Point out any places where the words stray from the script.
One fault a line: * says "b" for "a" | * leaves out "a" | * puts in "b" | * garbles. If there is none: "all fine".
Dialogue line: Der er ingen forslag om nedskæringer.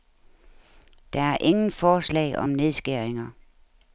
all fine